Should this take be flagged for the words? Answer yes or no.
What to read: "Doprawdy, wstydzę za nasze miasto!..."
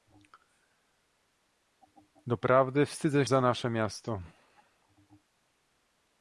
no